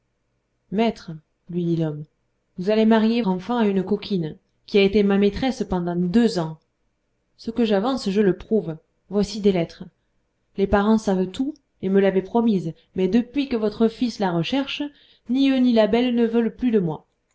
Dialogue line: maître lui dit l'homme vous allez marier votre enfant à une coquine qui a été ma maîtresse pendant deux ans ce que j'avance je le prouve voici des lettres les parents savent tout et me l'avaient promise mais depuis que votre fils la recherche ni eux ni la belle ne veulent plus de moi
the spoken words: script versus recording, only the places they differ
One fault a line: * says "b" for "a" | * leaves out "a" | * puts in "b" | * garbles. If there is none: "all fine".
* leaves out "votre"